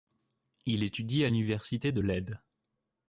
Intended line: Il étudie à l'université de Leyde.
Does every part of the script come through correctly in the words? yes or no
yes